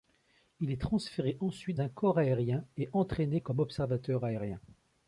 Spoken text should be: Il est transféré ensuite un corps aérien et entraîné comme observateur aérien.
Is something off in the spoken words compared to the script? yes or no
no